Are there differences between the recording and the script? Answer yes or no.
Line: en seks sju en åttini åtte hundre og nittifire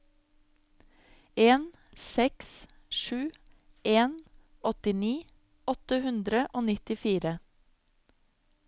no